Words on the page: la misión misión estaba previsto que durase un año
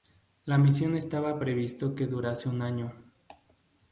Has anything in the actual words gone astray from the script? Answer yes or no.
yes